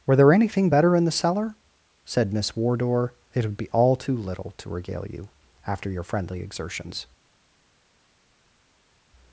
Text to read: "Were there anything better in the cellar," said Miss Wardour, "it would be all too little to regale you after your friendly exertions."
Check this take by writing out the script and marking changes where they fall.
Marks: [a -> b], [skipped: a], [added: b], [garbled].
"Were there anything better in the cellar," said Miss Wardour, "it would be all too little to regale you after your friendly exertions."